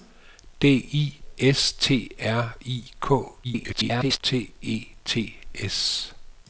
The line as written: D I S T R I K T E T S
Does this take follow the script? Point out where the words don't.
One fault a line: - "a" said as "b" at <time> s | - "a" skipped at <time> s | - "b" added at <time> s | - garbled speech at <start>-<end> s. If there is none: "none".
- garbled speech at 3.4-4.2 s